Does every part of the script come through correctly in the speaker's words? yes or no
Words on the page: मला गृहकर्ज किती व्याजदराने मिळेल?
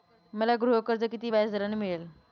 yes